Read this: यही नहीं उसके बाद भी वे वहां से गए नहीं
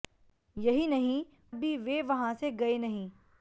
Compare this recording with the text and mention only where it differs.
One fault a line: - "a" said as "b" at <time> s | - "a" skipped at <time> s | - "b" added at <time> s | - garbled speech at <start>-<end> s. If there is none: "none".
- "उसके बाद" skipped at 1.2 s